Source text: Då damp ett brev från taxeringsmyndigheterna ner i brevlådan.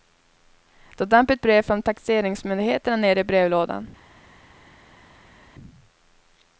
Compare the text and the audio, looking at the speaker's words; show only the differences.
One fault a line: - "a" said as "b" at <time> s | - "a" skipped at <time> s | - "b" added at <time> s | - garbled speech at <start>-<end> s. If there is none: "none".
none